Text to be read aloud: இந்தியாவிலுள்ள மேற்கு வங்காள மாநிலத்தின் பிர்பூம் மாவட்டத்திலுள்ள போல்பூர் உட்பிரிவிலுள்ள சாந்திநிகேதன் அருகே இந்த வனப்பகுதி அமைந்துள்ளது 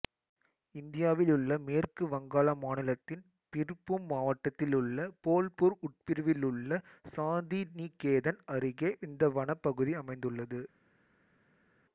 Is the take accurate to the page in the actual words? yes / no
yes